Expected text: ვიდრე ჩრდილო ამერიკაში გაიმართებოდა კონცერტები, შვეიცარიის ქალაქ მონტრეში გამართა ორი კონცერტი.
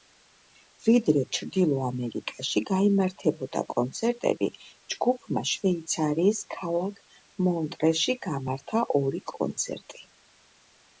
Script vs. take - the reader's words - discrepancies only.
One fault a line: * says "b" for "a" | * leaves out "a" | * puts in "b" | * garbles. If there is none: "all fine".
* puts in "ჯგუფმა"